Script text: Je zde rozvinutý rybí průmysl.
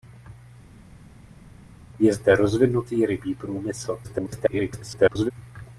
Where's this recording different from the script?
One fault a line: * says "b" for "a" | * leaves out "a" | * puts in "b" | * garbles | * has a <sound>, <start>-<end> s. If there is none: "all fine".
* garbles